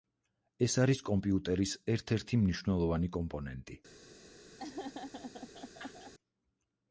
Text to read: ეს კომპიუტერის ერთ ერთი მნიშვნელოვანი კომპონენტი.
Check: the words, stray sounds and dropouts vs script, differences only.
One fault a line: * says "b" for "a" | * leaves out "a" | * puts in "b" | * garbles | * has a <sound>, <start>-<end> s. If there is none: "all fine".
* puts in "არის"
* has a laugh, 4.6-6.1 s